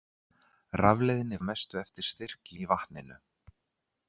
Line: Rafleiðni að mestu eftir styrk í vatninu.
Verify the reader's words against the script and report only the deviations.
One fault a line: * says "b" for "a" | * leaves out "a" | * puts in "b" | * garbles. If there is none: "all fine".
all fine